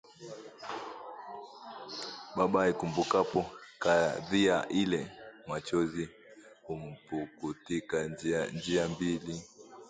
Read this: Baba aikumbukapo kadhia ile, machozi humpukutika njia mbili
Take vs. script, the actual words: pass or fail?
pass